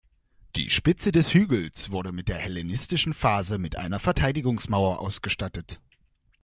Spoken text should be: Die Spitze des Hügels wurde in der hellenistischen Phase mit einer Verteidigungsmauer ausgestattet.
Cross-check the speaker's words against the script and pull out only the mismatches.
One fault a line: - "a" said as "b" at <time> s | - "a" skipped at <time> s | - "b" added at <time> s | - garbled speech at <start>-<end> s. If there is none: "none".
none